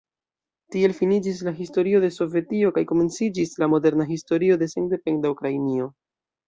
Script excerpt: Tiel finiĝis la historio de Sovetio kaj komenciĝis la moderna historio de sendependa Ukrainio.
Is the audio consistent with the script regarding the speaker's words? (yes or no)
yes